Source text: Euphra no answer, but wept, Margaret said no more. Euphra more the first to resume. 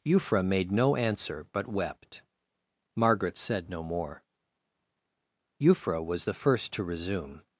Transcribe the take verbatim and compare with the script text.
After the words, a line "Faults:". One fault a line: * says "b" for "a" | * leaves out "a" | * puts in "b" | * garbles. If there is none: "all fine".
Euphra made no answer, but wept, Margaret said no more. Euphra was the first to resume.
Faults:
* puts in "made"
* says "was" for "more"